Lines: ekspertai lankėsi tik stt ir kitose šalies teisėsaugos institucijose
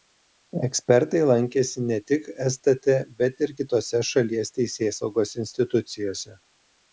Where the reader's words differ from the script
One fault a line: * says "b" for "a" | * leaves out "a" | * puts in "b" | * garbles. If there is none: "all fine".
* puts in "ne"
* puts in "bet"